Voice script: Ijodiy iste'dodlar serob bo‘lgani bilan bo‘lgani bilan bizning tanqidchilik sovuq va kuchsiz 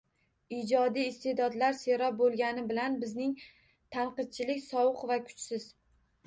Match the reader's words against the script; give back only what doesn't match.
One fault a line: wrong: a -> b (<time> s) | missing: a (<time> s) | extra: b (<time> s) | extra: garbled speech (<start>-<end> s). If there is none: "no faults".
missing: bo‘lgani bilan (3.0 s)